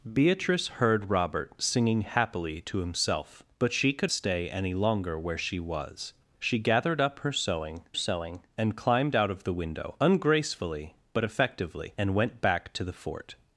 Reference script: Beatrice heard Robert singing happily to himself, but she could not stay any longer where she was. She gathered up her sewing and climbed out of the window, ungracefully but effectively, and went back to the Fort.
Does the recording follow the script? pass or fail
fail